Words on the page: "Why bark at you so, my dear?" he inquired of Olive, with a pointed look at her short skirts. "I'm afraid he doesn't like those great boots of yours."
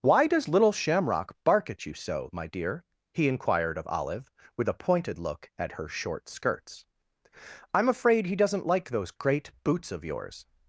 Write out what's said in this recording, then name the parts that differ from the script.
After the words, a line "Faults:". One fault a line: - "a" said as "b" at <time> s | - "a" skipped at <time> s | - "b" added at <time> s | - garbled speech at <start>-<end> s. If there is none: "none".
"Why does little Shamrock bark at you so, my dear?" he inquired of Olive, with a pointed look at her short skirts. "I'm afraid he doesn't like those great boots of yours."
Faults:
- "does little Shamrock" added at 0.2 s